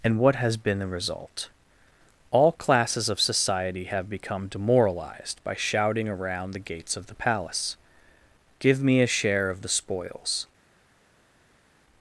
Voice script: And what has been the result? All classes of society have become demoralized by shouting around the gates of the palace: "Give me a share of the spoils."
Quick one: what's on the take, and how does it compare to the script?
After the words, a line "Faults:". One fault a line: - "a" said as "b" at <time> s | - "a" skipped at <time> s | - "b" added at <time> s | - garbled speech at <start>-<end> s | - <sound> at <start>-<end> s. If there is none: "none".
And what has been the result? All classes of society have become demoralized by shouting around the gates of the palace: "Give me a share of the spoils."
Faults:
none